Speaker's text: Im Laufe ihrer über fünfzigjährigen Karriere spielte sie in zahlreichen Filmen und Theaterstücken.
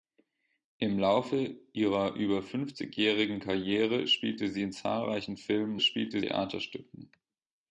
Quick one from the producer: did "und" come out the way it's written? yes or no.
no